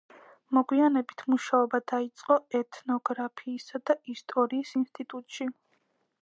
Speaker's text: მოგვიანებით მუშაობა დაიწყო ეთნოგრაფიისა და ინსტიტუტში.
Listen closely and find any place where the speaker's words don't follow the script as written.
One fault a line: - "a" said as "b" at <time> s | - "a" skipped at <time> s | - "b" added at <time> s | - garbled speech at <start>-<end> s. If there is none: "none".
- "ისტორიის" added at 4.1 s